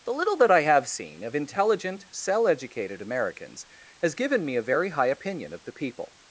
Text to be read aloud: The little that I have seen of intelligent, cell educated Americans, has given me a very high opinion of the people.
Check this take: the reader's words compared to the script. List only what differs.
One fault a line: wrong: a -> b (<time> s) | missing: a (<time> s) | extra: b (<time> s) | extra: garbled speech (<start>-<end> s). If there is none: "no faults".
no faults